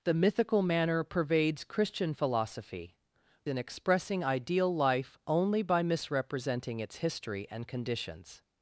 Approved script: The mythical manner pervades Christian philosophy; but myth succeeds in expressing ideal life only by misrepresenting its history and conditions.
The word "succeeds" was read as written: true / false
false